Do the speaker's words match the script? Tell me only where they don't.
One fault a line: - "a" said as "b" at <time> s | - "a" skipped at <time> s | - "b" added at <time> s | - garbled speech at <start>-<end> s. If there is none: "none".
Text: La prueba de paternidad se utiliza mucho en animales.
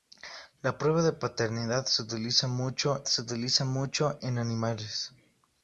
- "se utiliza mucho" added at 3.0 s